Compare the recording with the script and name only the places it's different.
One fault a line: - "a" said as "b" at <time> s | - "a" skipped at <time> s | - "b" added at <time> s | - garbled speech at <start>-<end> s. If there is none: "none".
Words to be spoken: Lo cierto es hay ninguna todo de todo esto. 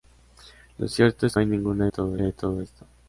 none